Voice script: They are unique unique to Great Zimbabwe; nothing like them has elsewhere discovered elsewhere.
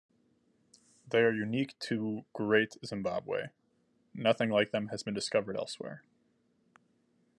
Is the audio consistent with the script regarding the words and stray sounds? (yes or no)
no